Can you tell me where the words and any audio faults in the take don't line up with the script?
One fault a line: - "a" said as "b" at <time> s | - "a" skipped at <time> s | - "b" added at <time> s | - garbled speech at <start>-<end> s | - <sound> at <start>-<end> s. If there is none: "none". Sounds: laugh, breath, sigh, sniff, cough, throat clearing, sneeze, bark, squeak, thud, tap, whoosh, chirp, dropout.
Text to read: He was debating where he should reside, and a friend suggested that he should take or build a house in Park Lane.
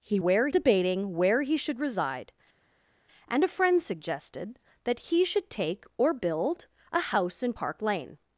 - "was" said as "where" at 0.2 s